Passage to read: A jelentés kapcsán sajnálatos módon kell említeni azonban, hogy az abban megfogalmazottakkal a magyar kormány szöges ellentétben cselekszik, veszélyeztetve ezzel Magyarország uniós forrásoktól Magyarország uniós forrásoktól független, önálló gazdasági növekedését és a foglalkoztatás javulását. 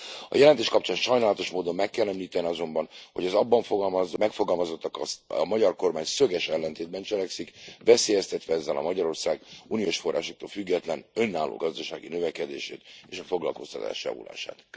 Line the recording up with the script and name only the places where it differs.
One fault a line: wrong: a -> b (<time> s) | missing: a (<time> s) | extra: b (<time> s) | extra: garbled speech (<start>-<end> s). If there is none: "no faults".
extra: meg (1.8 s)
missing: Magyarország uniós forrásoktól (10.5 s)